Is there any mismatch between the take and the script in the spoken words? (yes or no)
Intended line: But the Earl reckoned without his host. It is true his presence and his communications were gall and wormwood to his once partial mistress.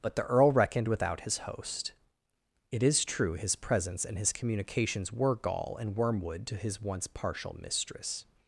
no